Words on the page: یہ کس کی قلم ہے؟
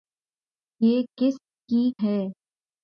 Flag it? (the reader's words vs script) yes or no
yes